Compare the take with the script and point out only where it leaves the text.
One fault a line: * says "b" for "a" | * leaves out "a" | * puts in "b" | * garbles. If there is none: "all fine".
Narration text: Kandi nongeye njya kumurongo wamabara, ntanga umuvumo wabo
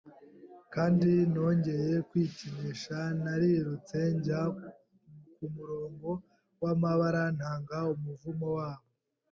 * puts in "kwikinisha narirutse"